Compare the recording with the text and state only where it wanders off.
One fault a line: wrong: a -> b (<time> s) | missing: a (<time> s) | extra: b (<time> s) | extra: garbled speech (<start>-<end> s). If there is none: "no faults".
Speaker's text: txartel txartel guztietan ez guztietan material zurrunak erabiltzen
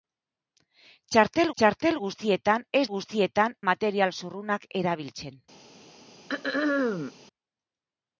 no faults